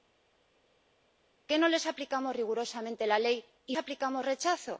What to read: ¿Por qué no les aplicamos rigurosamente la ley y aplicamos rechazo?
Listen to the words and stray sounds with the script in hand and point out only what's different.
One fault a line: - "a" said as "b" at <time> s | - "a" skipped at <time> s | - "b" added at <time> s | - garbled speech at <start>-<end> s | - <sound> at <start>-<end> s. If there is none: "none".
none